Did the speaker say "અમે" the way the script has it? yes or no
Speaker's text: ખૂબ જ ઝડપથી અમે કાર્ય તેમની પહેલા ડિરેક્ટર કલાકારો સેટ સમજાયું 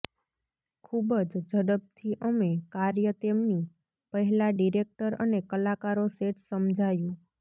yes